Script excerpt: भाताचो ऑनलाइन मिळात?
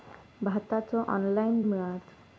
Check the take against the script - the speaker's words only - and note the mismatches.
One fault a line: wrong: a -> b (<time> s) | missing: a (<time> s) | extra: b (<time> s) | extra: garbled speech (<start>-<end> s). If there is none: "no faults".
no faults